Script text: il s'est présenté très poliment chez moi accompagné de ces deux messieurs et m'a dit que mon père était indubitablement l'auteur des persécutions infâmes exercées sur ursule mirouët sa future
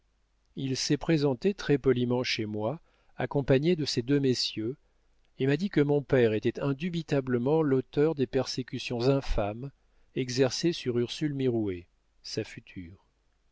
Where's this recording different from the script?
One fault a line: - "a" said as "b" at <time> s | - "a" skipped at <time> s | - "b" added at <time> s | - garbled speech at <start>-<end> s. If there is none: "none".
none